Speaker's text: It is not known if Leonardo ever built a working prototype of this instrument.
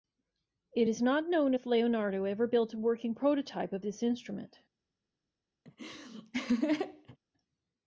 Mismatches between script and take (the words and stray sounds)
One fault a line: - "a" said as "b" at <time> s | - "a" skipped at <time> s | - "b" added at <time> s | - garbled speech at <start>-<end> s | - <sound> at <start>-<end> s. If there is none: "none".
- laugh at 5.7-7.2 s